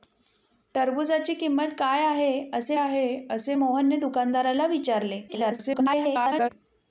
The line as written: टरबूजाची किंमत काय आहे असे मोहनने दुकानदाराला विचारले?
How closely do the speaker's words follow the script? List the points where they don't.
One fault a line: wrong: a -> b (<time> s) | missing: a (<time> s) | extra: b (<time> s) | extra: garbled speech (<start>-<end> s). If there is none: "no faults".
extra: आहे असे (2.8 s)
extra: garbled speech (5.3-6.5 s)